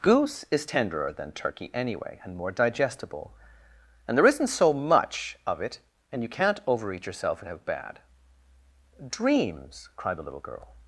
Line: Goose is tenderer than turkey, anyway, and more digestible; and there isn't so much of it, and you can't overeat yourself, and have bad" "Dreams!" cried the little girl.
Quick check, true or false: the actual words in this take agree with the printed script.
true